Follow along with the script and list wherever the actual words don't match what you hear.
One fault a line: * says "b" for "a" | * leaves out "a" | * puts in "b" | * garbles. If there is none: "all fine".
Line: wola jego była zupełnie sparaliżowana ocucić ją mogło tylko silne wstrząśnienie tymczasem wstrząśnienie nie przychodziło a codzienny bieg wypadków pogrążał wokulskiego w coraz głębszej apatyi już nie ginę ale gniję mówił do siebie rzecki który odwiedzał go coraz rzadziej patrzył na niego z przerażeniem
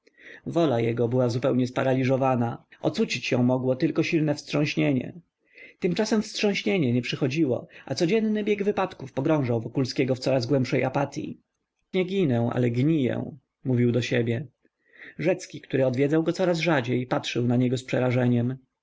* leaves out "już"